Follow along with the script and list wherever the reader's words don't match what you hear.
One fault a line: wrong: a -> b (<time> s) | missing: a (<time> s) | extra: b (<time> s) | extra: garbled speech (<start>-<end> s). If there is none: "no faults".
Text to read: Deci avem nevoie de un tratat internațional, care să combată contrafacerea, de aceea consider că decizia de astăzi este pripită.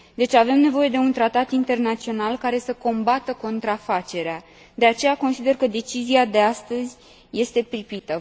no faults